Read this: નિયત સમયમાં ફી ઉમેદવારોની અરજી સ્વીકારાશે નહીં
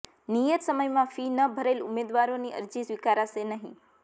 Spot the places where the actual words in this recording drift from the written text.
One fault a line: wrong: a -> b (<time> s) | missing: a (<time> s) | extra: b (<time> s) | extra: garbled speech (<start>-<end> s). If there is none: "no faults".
extra: ન ભરેલ (1.3 s)